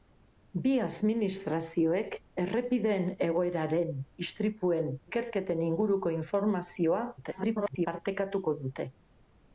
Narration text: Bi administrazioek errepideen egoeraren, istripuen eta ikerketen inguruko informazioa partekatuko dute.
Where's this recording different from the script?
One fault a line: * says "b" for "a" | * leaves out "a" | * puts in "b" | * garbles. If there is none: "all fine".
* leaves out "eta"
* garbles